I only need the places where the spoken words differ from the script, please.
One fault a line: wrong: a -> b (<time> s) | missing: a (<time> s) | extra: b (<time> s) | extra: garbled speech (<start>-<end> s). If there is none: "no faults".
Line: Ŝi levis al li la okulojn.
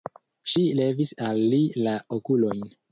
no faults